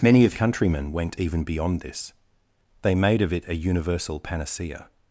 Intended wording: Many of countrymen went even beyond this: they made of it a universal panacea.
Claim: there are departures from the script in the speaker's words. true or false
false